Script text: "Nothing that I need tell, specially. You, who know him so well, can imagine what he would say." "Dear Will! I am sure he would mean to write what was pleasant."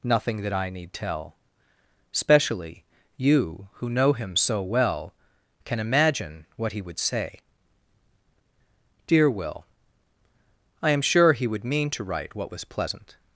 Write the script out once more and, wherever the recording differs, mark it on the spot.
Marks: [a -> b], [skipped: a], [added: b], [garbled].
"Nothing that I need tell, specially. You, who know him so well, can imagine what he would say." "Dear Will! I am sure he would mean to write what was pleasant."